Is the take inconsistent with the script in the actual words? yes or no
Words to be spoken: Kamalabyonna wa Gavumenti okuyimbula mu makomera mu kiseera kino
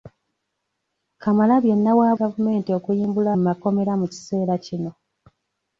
no